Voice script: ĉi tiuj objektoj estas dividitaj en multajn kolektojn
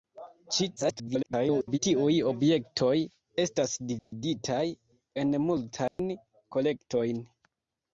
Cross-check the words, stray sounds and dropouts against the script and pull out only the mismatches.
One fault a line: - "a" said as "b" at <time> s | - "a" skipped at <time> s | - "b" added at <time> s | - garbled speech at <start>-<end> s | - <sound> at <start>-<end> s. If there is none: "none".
- garbled speech at 0.8-1.8 s
- dropout at 4.0-4.1 s
- dropout at 5.9-6.0 s